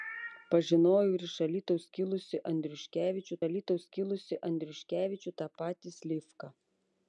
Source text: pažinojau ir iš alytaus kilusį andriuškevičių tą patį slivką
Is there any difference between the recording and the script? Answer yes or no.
yes